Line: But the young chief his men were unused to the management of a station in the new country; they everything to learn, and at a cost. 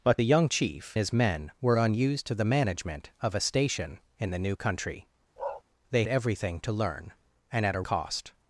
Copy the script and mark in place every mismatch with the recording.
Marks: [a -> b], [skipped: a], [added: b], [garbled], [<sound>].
But the young chief his men were unused to the management of a station in the new country; [bark] they everything to learn, and at a cost.